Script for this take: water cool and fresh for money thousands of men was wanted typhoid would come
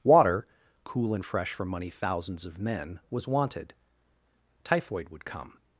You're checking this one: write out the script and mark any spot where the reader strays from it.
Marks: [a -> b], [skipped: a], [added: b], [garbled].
water cool and fresh for money thousands of men was wanted typhoid would come